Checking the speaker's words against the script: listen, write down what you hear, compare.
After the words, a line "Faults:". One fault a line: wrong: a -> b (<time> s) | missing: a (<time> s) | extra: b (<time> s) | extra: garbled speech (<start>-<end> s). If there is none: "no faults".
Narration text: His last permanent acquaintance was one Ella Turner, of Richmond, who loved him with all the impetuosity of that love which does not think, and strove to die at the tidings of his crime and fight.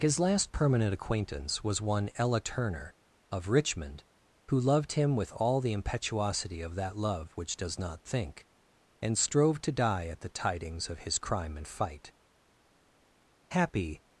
His last permanent acquaintance was one Ella Turner, of Richmond, who loved him with all the impetuosity of that love which does not think, and strove to die at the tidings of his crime and fight. Happy
Faults:
extra: Happy (13.5 s)